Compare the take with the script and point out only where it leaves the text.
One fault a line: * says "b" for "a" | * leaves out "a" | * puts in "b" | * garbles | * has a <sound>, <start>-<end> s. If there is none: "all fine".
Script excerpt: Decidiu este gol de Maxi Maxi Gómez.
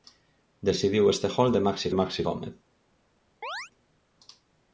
* has a chirp, 3.4-3.7 s